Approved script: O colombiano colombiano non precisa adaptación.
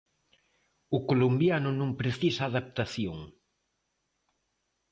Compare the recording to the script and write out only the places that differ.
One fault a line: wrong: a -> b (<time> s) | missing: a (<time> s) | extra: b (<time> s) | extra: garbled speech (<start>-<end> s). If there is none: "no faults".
missing: colombiano (1.7 s)